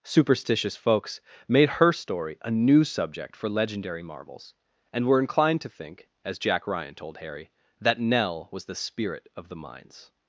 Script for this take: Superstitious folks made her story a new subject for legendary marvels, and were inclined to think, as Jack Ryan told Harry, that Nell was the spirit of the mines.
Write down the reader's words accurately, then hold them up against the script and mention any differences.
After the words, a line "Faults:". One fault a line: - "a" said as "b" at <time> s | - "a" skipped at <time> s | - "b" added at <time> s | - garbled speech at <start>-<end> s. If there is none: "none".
Superstitious folks made her story a new subject for legendary marvels, and were inclined to think, as Jack Ryan told Harry, that Nell was the spirit of the mines.
Faults:
none